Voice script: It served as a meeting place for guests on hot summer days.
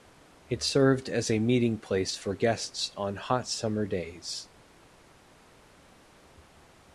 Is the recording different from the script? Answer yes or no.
no